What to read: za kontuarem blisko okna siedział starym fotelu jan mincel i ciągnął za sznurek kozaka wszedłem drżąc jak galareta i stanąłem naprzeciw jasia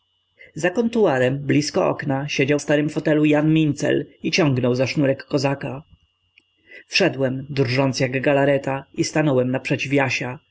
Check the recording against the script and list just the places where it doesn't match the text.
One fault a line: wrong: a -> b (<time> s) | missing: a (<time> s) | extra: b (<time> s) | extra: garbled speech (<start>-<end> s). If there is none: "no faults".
no faults